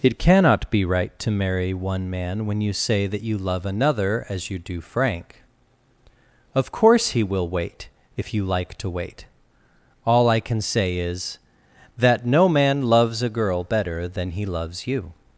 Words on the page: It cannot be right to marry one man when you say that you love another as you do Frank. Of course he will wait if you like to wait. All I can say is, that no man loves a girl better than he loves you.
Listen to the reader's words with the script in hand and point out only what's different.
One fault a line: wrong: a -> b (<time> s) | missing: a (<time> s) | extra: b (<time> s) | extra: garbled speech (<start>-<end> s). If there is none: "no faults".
no faults